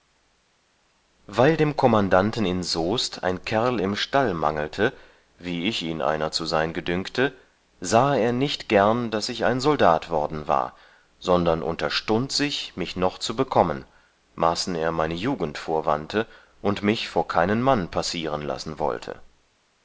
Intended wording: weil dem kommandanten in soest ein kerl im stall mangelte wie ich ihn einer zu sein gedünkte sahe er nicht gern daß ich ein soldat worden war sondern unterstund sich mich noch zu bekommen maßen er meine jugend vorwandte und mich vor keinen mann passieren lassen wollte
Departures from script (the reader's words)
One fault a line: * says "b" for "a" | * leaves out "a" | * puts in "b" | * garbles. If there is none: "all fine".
all fine